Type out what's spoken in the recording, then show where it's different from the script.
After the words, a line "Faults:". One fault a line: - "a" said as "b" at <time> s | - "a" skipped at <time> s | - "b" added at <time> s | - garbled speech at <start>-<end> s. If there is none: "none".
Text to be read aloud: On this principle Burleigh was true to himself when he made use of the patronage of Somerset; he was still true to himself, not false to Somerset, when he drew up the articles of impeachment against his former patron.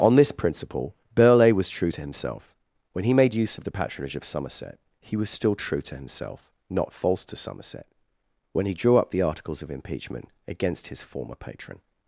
On this principle Burleigh was true to himself when he made use of the patronage of Somerset; he was still true to himself, not false to Somerset, when he drew up the articles of impeachment against his former patron.
Faults:
none